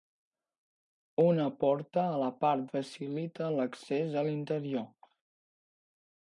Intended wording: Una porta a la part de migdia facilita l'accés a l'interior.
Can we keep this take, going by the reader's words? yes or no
no